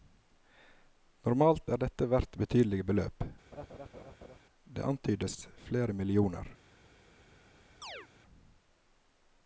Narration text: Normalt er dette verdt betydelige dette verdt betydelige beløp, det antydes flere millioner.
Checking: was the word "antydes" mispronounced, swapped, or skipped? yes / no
no